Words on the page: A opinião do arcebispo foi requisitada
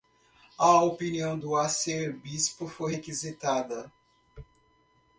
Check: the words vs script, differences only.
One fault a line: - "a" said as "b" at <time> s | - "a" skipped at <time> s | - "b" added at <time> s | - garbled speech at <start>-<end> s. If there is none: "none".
none